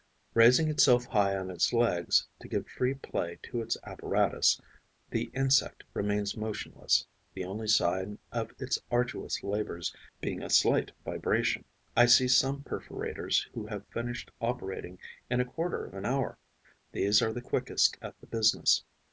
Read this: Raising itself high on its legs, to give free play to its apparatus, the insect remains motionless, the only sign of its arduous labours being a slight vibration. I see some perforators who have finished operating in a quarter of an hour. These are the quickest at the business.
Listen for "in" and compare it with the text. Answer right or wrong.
right